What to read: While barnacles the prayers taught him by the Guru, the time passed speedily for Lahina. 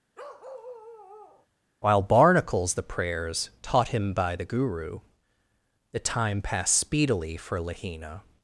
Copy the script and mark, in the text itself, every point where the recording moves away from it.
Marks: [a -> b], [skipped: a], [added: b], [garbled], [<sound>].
[bark] While barnacles the prayers taught him by the Guru, the time passed speedily for Lahina.